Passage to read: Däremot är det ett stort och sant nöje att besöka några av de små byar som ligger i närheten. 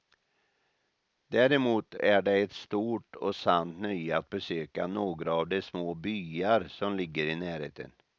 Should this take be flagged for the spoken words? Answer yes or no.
no